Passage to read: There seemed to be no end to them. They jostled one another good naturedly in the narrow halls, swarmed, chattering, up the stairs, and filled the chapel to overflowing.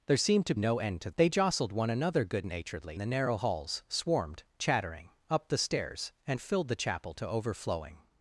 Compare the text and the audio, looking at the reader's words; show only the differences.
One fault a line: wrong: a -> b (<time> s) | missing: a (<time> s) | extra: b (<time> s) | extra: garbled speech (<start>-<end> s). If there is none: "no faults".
missing: be (0.6 s)
missing: them (1.1 s)
missing: in (3.0 s)